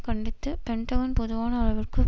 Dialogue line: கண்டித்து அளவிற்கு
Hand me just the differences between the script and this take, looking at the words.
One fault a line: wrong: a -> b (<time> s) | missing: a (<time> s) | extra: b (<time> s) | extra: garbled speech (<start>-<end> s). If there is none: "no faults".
extra: பென்டகன் பொதுவான (0.6 s)